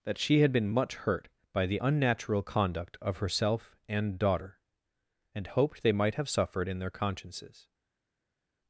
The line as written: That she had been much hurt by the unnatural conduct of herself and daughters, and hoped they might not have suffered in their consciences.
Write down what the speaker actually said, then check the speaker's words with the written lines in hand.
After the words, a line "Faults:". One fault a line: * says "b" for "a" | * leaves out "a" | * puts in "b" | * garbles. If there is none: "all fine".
That she had been much hurt by the unnatural conduct of herself and daughter, and hoped they might have suffered in their consciences.
Faults:
* says "daughter" for "daughters"
* leaves out "not"